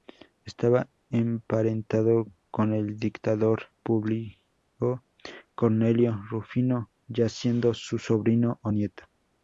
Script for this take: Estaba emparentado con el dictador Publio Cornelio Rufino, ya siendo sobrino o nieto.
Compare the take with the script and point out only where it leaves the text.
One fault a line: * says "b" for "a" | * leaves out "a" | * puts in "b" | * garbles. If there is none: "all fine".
* puts in "su"